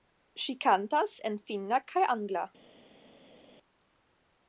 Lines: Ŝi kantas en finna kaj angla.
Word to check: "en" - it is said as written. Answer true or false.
true